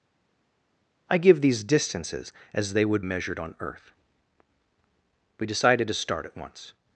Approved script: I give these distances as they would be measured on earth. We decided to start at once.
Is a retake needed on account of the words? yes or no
yes